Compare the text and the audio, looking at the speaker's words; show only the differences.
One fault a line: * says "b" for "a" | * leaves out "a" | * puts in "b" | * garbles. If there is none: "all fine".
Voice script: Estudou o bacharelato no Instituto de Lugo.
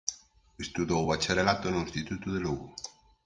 all fine